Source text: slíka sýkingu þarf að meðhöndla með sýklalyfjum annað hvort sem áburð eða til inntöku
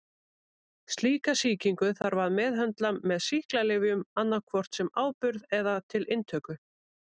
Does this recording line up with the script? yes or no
yes